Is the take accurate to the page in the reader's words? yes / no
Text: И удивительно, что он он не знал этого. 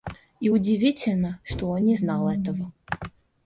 no